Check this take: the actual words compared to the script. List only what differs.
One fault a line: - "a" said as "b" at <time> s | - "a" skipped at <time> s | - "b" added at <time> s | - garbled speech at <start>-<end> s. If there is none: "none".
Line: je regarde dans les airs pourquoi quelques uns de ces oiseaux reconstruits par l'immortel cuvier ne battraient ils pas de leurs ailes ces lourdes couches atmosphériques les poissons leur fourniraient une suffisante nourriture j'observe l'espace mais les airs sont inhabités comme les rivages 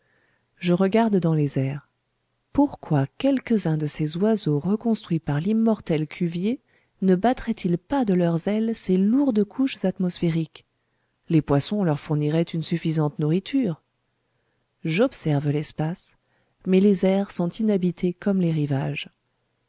none